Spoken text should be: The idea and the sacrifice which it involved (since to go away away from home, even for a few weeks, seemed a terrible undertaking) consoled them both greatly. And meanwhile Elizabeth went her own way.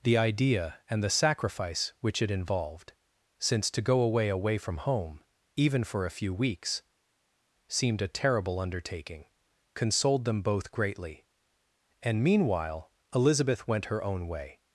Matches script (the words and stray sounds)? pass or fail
pass